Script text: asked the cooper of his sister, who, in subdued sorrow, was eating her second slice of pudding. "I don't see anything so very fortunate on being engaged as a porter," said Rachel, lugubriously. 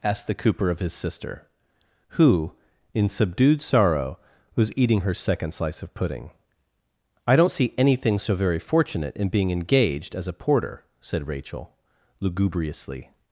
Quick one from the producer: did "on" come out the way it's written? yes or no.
no